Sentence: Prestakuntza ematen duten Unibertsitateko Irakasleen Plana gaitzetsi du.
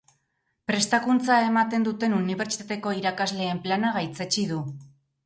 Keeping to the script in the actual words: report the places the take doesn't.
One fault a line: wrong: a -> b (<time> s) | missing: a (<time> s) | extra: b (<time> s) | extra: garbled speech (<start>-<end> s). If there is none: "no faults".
no faults